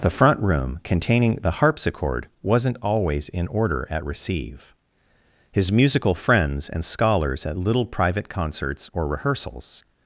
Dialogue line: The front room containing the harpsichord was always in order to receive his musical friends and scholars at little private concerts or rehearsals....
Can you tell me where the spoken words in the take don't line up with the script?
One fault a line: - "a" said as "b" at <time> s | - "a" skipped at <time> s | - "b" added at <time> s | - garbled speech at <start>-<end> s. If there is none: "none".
- "was" said as "wasn't" at 2.4 s
- "to" said as "at" at 3.9 s